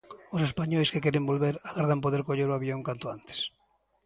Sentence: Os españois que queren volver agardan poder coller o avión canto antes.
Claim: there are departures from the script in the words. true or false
false